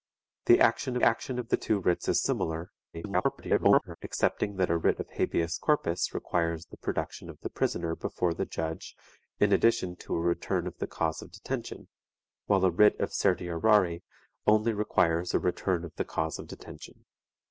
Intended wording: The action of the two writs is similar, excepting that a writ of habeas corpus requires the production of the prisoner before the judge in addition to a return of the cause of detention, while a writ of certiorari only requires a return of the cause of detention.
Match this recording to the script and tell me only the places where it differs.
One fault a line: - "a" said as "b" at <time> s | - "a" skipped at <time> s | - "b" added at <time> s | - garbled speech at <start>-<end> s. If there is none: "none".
- "action" added at 1.0 s
- garbled speech at 2.9-4.0 s